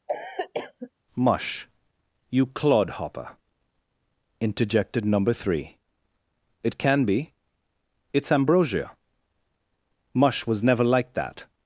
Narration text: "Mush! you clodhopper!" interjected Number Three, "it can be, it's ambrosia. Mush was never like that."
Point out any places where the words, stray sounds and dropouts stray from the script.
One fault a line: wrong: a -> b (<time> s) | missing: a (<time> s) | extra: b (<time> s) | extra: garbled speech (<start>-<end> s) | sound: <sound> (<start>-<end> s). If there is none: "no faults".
sound: cough (0.1-0.9 s)